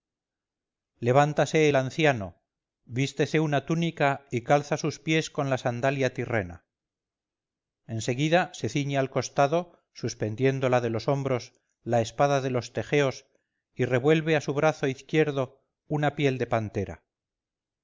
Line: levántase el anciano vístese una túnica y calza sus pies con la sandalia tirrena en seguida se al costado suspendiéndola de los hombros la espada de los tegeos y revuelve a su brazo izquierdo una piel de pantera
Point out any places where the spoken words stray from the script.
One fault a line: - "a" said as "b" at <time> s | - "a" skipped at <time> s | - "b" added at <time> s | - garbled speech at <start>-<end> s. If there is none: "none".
- "ciñe" added at 8.7 s